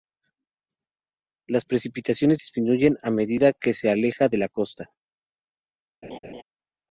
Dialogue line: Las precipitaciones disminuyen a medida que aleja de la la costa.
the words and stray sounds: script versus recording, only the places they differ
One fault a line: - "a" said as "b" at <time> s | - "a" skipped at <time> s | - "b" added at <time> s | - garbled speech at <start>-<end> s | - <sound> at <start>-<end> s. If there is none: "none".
- "se" added at 3.7 s
- "la" skipped at 4.5 s
- laugh at 6.0-6.4 s